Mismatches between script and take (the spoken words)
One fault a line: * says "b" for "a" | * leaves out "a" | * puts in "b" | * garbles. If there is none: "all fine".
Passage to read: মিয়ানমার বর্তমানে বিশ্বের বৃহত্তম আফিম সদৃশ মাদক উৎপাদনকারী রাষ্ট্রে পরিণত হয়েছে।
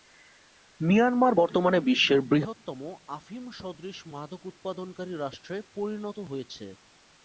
all fine